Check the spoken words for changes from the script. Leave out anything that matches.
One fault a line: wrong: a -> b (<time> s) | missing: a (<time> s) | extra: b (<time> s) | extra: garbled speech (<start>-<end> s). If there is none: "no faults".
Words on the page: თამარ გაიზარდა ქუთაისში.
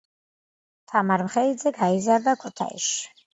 extra: მხეიძე (1.2 s)